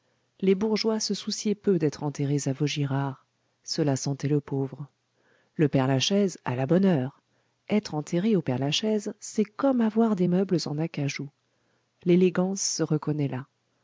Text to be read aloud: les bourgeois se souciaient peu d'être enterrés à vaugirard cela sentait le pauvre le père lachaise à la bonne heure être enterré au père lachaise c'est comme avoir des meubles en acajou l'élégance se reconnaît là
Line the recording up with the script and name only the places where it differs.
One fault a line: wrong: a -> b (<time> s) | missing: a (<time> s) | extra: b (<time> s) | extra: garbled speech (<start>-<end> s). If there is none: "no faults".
no faults